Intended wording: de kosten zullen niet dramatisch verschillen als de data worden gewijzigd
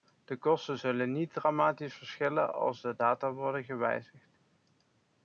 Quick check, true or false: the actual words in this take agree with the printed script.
true